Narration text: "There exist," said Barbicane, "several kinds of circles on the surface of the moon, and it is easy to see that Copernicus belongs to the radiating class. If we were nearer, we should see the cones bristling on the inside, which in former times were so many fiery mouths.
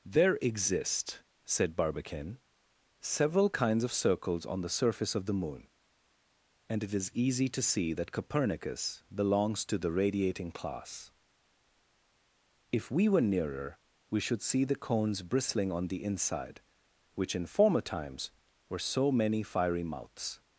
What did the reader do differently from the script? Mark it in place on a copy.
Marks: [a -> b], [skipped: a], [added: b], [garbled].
"There exist," said Barbicane, "several kinds of circles on the surface of the moon, and it is easy to see that Copernicus belongs to the radiating class. If we were nearer, we should see the cones bristling on the inside, which in former times were so many fiery mouths.